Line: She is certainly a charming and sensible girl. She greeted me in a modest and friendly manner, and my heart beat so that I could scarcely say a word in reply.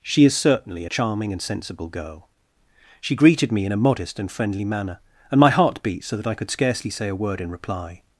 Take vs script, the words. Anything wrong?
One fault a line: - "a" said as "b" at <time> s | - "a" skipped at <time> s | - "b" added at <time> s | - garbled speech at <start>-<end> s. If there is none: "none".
none